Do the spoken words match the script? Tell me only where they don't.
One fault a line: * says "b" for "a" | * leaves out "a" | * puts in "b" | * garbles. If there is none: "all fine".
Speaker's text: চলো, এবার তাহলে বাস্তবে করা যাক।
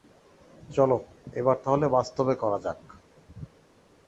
all fine